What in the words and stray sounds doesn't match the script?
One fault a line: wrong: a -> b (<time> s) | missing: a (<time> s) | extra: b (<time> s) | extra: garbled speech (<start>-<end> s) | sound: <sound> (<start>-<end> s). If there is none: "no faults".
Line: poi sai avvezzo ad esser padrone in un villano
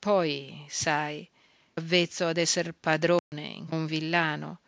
sound: dropout (3.2-3.3 s)